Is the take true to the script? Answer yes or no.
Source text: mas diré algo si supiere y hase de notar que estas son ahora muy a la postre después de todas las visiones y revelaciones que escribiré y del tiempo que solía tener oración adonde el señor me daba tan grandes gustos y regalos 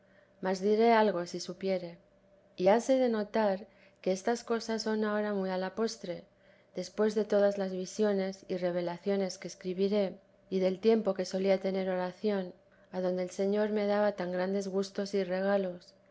no